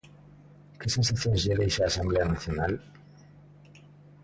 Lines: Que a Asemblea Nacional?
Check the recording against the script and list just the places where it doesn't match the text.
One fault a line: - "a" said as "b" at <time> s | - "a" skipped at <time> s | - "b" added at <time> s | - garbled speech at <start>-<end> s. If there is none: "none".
- "sensacións lle deixa" added at 0.9 s